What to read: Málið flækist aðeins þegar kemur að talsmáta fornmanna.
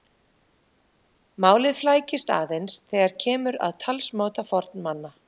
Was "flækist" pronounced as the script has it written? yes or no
yes